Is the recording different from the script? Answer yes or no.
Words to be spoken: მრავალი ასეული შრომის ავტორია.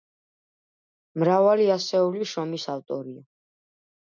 no